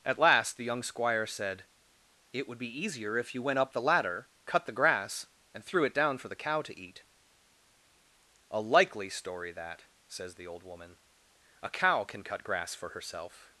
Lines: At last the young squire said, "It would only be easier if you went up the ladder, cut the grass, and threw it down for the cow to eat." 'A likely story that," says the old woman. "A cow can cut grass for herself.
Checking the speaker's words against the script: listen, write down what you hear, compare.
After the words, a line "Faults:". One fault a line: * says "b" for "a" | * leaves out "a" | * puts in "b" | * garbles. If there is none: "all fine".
At last the young squire said, "It would be easier if you went up the ladder, cut the grass, and threw it down for the cow to eat." 'A likely story that," says the old woman. "A cow can cut grass for herself.
Faults:
* leaves out "only"